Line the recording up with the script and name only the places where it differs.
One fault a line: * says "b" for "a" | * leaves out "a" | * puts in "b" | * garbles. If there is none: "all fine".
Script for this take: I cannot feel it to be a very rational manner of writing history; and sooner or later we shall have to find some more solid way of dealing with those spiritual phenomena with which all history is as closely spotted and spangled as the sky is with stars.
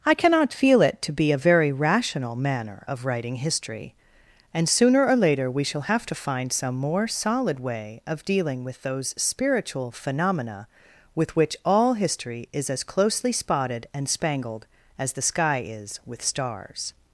all fine